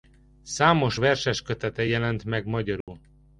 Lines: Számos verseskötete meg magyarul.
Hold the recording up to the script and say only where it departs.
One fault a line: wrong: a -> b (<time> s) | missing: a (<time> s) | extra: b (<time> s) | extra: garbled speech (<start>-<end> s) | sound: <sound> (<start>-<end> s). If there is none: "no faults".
extra: jelent (1.8 s)
sound: dropout (2.8-2.9 s)